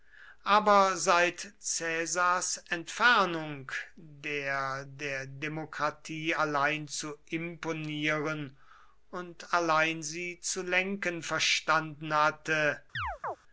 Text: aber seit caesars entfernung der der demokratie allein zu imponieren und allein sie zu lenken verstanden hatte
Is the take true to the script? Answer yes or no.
yes